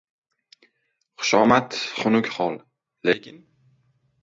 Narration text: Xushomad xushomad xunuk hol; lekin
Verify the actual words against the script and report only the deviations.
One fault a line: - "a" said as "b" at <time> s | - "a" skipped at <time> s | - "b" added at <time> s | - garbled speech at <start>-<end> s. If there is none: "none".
- "xushomad" skipped at 1.7 s